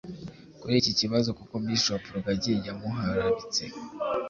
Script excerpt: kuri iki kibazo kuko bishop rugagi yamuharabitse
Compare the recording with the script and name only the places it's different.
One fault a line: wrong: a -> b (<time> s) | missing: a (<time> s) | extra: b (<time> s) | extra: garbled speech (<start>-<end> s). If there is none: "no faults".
no faults